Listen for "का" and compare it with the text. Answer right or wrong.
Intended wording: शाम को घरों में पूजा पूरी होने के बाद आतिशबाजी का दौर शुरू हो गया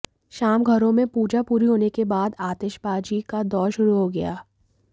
right